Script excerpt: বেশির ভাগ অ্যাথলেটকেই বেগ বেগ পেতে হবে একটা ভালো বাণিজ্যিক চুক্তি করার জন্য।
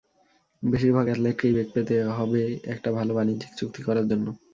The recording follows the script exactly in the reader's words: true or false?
false